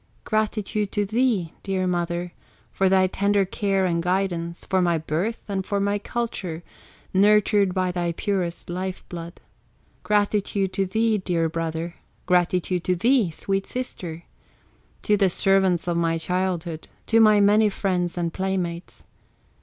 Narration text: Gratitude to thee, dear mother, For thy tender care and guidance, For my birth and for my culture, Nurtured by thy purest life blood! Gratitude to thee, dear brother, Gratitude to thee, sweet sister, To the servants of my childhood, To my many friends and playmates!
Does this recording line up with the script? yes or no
yes